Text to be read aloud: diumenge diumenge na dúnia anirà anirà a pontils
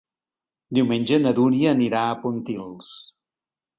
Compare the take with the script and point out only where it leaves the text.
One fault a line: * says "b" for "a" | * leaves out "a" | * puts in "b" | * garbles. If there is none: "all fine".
* leaves out "diumenge"
* leaves out "anirà"